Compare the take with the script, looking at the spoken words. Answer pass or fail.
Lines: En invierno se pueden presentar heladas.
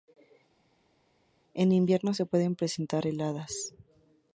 pass